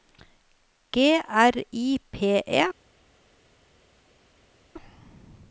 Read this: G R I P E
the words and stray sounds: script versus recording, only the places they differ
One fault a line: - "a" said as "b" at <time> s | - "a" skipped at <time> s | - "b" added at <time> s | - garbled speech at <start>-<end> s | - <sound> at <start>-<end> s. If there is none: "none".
none